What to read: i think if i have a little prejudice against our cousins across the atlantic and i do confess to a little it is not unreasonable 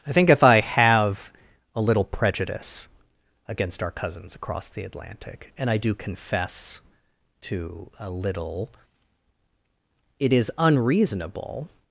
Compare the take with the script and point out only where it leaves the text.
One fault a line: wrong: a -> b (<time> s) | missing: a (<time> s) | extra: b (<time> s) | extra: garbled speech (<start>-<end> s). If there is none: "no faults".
missing: not (10.5 s)